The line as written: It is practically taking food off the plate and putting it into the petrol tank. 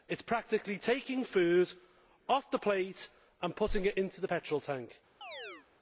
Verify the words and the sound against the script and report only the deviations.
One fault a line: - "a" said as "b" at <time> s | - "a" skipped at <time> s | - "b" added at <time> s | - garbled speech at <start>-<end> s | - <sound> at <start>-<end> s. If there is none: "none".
- chirp at 5.2-5.7 s